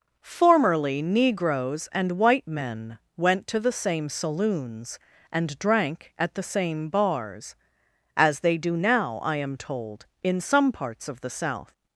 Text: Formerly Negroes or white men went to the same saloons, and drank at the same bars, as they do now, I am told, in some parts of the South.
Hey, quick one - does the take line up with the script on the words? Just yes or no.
no